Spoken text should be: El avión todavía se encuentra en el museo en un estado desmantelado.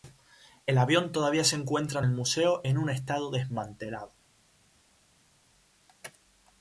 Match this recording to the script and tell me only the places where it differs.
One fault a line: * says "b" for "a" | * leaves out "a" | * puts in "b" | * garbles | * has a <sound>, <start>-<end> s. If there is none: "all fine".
all fine